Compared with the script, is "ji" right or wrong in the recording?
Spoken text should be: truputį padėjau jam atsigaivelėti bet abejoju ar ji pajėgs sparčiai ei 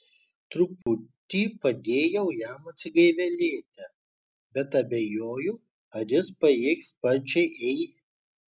wrong